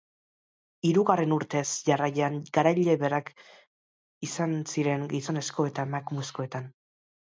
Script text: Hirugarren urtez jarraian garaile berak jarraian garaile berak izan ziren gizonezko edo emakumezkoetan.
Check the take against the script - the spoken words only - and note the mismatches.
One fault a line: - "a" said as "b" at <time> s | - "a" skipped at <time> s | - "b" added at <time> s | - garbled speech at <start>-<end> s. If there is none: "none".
- "jarraian garaile berak" skipped at 3.3 s
- "edo" said as "eta" at 5.7 s